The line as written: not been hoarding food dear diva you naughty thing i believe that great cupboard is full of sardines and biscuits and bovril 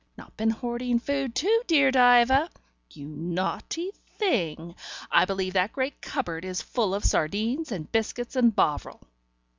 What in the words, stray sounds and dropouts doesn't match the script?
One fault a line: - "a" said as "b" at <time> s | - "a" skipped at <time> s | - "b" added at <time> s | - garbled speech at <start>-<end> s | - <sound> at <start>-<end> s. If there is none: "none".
- "too" added at 1.4 s